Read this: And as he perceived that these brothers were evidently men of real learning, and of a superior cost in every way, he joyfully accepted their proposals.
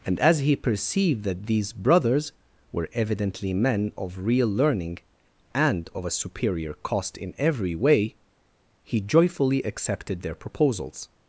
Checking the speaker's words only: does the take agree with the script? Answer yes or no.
yes